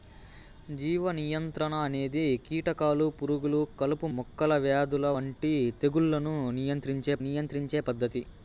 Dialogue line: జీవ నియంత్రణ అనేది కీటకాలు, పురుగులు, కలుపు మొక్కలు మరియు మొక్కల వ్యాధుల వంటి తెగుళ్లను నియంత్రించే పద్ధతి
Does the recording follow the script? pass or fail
fail